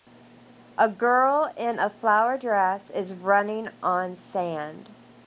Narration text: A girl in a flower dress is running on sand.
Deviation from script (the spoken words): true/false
false